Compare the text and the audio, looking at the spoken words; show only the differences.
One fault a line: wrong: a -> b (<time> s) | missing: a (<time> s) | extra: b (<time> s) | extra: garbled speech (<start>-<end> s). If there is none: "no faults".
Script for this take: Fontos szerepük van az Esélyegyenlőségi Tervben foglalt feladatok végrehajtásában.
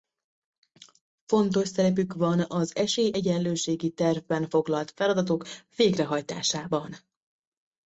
no faults